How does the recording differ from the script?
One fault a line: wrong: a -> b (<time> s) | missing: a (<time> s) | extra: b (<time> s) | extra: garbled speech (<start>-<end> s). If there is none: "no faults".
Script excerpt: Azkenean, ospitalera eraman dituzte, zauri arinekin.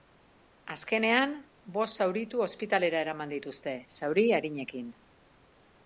extra: bost zauritu (1.8 s)